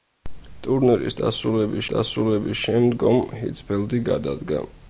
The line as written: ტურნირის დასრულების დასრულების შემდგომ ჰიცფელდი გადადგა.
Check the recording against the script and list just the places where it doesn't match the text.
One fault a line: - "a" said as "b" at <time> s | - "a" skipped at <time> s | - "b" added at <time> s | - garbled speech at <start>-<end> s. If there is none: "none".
none